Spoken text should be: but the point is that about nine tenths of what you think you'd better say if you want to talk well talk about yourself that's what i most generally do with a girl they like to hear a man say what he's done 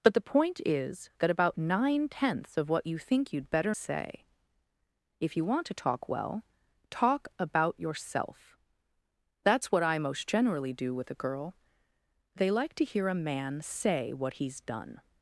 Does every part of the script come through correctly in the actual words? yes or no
yes